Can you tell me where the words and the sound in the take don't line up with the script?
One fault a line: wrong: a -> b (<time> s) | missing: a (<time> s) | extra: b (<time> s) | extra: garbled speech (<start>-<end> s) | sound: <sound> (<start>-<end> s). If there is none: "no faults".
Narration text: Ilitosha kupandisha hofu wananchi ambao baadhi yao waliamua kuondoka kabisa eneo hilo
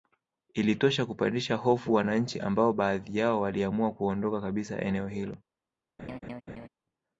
sound: laugh (6.0-6.7 s)